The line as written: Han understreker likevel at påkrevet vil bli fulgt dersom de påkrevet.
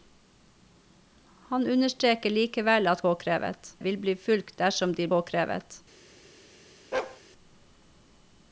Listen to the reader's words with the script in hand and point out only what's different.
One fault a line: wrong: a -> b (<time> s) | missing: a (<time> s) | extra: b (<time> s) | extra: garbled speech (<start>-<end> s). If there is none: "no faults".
no faults